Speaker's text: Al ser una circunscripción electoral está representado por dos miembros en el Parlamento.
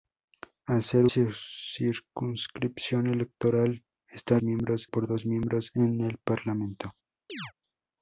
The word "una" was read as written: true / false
false